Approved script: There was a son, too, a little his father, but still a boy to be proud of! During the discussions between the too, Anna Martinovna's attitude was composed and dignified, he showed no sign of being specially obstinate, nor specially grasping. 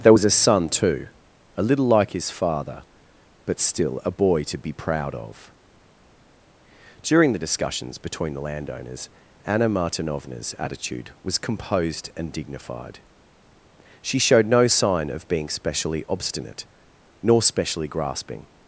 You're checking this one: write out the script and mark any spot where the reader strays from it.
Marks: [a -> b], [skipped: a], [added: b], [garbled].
There was a son, too, a little [added: like] his father, but still a boy to be proud of! During the discussions between the [too, -> landowners] Anna Martinovna's attitude was composed and dignified, [he -> she] showed no sign of being specially obstinate, nor specially grasping.